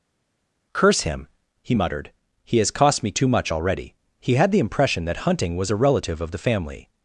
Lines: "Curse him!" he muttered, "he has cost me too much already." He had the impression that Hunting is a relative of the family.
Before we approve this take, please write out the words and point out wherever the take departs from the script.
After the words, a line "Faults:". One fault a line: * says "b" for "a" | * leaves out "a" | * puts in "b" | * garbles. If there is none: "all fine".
"Curse him!" he muttered, "he has cost me too much already." He had the impression that Hunting was a relative of the family.
Faults:
* says "was" for "is"